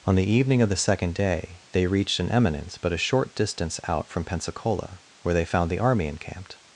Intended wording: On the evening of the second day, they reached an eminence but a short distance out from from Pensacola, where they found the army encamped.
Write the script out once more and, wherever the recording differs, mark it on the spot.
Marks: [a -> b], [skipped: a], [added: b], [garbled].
On the evening of the second day, they reached an eminence but a short distance out from [skipped: from] Pensacola, where they found the army encamped.